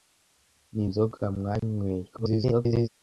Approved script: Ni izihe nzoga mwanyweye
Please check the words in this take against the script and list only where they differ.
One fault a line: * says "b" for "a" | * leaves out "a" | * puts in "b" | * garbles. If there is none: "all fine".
* leaves out "izihe"
* garbles